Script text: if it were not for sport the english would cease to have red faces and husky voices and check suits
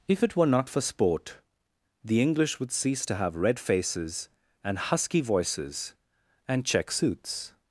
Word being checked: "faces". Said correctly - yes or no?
yes